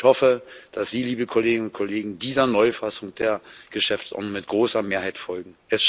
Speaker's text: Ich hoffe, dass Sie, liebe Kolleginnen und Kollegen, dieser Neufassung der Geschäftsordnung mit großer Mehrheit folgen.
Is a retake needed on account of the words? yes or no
no